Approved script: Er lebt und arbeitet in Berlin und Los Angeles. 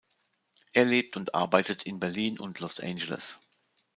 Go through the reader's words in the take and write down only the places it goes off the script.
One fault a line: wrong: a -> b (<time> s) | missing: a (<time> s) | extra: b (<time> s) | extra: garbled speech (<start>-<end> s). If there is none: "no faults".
no faults